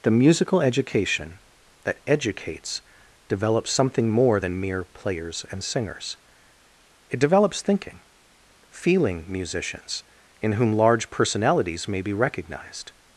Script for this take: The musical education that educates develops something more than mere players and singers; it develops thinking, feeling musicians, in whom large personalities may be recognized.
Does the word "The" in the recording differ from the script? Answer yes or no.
no